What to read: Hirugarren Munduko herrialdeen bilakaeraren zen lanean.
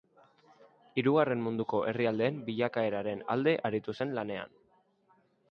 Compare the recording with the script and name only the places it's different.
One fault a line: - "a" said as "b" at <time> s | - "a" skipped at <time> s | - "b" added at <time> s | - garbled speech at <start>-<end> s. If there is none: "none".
- "alde aritu" added at 3.4 s